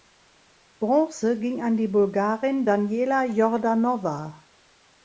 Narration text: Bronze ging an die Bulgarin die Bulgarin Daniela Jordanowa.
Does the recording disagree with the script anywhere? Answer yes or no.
yes